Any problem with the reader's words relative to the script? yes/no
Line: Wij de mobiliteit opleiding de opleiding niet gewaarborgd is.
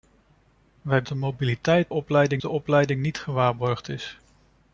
no